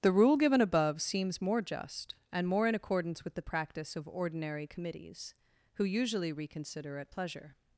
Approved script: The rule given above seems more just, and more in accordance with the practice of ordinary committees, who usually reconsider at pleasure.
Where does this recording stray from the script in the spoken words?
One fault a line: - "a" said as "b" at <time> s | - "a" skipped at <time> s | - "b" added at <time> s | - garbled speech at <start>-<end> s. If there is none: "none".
none